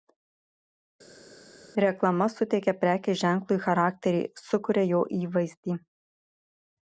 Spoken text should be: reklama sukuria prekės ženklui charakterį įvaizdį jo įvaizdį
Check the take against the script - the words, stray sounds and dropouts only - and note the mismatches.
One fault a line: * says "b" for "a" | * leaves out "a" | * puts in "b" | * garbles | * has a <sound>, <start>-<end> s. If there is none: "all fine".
* says "suteikia" for "sukuria"
* says "sukuria" for "įvaizdį"